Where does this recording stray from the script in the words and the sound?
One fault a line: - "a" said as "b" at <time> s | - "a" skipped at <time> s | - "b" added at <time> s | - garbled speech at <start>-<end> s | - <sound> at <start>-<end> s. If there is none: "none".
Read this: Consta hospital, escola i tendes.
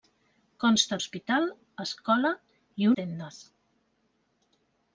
none